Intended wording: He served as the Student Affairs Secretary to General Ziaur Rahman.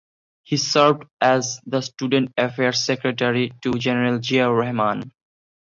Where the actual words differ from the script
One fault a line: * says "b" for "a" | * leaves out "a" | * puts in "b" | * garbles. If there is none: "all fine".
all fine